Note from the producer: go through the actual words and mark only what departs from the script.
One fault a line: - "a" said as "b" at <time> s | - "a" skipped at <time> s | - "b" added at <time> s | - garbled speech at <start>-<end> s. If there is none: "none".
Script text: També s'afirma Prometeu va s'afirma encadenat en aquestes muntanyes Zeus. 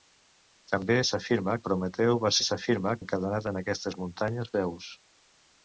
none